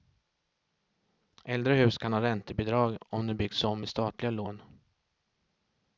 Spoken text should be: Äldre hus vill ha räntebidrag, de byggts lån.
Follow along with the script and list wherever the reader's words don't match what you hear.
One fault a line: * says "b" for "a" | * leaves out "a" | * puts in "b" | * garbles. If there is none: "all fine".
* says "kan" for "vill"
* puts in "om"
* puts in "om med statliga"